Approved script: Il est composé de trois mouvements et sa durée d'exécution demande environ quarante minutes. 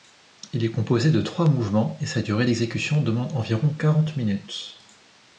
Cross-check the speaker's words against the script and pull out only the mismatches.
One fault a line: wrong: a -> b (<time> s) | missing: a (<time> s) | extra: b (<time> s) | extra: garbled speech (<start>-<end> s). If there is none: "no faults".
no faults